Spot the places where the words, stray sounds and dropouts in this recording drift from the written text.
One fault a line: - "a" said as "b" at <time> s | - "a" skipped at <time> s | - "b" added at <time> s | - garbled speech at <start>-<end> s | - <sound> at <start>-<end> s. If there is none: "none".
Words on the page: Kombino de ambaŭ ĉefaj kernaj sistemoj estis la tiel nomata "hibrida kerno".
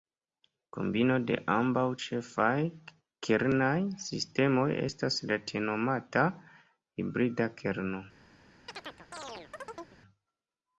- "estis" said as "estas" at 4.9 s
- chirp at 8.7-10.0 s